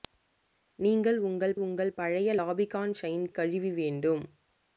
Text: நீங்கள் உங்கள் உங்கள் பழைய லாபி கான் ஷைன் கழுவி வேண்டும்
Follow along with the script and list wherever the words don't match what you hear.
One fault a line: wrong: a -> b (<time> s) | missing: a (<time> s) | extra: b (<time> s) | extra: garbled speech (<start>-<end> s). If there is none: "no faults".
no faults